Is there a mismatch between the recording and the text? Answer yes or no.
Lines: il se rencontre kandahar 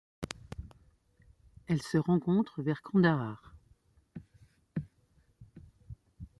yes